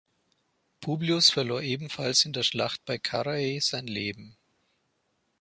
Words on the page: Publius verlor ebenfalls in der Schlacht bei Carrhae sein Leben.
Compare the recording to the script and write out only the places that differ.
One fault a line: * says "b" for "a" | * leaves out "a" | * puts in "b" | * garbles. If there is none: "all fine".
all fine